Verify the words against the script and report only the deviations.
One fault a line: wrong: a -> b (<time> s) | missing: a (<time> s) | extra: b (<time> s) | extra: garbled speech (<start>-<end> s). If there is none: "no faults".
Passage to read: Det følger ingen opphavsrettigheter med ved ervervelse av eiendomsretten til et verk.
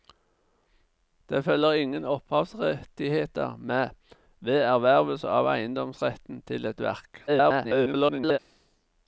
extra: garbled speech (7.3-8.4 s)